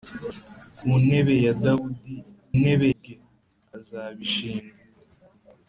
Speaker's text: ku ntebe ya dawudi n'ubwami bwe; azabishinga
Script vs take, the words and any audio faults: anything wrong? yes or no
yes